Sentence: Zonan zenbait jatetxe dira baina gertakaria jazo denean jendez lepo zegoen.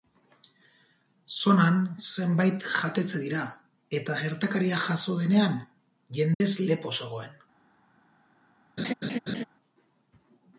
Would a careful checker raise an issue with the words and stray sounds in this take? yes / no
yes